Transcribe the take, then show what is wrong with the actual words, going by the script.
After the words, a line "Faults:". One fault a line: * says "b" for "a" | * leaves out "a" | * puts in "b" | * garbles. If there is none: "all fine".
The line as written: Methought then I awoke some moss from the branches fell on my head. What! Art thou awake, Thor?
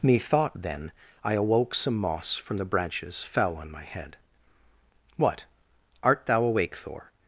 Methought then I awoke some moss from the branches fell on my head. What! Art thou awake, Thor?
Faults:
all fine